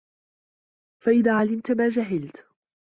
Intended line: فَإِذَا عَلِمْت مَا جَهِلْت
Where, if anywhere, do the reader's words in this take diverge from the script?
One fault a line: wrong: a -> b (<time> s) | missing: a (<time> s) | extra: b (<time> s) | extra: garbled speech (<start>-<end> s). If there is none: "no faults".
no faults